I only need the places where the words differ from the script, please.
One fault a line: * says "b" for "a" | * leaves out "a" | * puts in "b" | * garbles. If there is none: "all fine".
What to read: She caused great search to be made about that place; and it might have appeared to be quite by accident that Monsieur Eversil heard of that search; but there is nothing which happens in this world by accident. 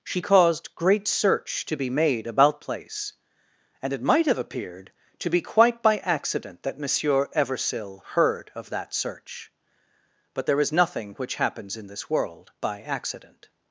* leaves out "that"